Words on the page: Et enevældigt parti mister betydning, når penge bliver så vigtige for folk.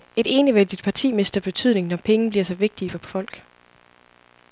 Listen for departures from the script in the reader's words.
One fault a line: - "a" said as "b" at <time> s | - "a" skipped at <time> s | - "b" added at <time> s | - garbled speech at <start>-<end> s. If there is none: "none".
none